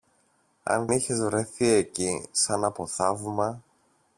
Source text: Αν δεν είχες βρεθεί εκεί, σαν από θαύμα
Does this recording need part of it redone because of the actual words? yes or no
yes